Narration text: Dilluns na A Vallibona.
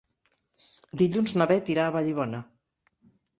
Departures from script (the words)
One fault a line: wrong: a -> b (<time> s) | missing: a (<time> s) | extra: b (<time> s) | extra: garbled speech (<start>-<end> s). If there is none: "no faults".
extra: Beth irà (1.5 s)